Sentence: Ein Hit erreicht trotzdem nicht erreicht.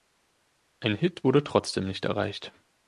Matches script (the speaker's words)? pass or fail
fail